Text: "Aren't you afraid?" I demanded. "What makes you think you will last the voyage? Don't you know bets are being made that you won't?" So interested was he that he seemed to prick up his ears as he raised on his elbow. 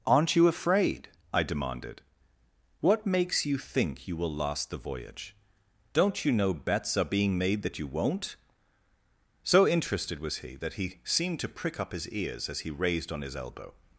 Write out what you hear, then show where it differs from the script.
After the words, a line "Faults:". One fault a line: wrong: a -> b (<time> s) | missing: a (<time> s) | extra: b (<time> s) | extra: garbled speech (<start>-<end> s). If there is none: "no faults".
"Aren't you afraid?" I demanded. "What makes you think you will last the voyage? Don't you know bets are being made that you won't?" So interested was he that he seemed to prick up his ears as he raised on his elbow.
Faults:
no faults